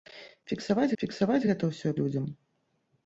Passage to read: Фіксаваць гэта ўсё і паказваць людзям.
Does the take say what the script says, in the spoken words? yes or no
no